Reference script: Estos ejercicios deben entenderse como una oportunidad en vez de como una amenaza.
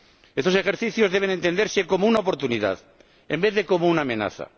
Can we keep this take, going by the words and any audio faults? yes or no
yes